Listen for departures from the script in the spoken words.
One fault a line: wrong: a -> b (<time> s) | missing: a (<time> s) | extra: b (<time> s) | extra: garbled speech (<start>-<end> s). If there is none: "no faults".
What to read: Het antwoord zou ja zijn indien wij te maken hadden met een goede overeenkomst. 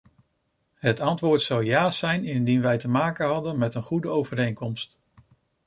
no faults